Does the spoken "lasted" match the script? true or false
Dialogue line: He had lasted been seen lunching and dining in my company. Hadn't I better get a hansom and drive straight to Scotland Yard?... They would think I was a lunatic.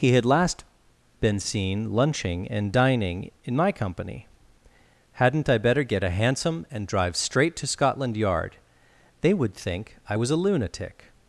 false